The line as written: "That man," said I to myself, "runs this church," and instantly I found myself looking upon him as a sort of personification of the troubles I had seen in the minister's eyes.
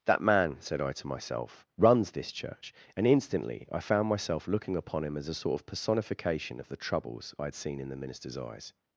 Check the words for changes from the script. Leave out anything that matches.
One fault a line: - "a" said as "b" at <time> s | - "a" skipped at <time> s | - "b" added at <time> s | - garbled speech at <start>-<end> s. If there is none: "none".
none